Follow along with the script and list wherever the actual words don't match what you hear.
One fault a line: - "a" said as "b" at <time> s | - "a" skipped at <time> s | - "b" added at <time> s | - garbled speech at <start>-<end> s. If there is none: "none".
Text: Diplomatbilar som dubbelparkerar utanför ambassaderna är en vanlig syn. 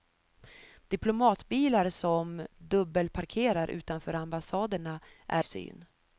- "en vanlig" skipped at 5.4 s